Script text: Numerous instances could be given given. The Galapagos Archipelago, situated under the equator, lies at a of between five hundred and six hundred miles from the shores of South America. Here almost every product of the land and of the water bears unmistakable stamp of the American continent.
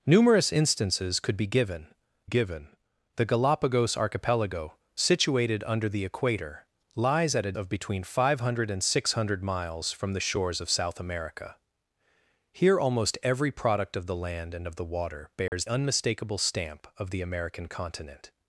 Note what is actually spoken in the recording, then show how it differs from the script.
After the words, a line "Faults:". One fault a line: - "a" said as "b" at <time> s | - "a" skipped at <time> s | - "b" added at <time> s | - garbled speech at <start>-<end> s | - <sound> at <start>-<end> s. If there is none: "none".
Numerous instances could be given given. The Galapagos Archipelago, situated under the equator, lies at a of between five hundred and six hundred miles from the shores of South America. Here almost every product of the land and of the water bears unmistakable stamp of the American continent.
Faults:
- dropout at 15.5-15.5 s